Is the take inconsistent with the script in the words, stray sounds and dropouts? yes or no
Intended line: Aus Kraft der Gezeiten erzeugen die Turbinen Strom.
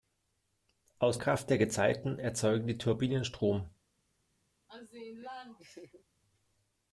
yes